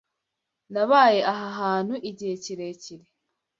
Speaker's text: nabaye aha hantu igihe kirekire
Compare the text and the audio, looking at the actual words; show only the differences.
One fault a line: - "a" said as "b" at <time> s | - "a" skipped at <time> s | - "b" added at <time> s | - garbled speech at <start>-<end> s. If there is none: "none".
none